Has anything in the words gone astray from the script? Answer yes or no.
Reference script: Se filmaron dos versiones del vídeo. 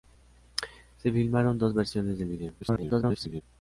yes